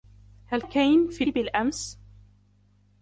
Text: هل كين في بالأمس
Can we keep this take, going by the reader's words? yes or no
yes